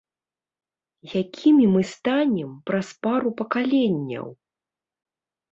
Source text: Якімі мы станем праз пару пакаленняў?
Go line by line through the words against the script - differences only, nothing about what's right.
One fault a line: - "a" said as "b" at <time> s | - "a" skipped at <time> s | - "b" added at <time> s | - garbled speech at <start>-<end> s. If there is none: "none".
none